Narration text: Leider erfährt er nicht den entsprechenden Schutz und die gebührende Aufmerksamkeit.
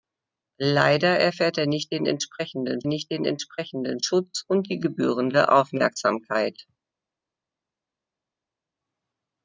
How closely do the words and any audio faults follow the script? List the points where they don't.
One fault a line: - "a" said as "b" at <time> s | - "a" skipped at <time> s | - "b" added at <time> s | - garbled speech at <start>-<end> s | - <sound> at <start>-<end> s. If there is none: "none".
- "nicht den entsprechenden" added at 2.9 s